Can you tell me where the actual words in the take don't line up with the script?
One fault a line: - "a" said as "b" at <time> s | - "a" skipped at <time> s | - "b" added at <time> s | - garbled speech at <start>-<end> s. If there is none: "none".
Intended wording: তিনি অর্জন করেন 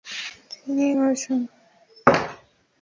none